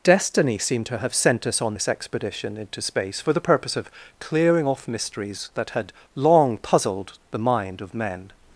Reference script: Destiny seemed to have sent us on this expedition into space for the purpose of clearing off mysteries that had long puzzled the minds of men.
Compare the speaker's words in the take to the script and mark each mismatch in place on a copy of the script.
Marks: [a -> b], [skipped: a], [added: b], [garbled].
Destiny seemed to have sent us on this expedition into space for the purpose of clearing off mysteries that had long puzzled the [minds -> mind] of men.